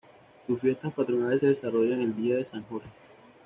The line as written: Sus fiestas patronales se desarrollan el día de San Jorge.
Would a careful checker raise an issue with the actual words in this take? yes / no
no